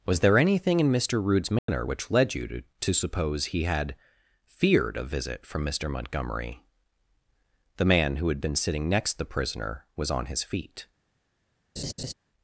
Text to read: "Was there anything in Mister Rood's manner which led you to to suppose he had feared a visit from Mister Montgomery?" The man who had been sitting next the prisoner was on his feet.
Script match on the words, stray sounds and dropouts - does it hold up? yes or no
no